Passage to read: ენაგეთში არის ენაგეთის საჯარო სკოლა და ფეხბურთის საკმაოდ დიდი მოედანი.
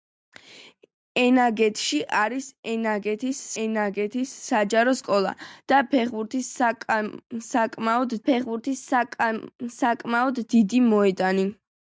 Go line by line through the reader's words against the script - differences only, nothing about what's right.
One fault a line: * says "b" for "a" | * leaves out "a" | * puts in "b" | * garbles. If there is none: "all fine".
* puts in "ენაგეთის"
* puts in "ფეხბურთის საკმაოდ"